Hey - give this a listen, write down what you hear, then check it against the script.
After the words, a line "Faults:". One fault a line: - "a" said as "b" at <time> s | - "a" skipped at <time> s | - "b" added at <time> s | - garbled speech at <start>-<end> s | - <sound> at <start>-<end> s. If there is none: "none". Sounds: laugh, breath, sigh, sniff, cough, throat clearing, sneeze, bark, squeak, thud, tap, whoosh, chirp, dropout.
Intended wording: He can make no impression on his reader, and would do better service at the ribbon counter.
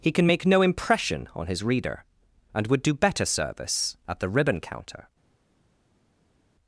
He can make no impression on his reader, and would do better service at the ribbon counter.
Faults:
none